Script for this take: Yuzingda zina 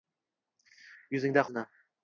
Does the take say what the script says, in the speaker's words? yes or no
yes